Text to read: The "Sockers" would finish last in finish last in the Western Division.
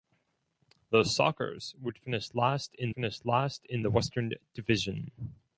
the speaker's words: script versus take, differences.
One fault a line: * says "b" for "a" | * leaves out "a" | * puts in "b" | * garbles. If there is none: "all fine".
all fine